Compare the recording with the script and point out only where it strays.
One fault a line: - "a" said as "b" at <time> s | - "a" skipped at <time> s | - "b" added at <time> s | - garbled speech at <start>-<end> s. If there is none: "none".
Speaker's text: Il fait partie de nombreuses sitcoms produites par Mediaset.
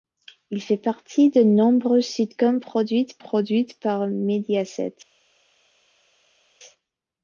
- "produites" added at 3.2 s